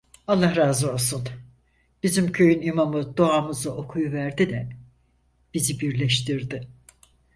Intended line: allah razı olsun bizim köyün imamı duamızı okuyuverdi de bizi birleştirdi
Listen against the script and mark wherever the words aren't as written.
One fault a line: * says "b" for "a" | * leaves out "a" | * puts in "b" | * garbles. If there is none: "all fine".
all fine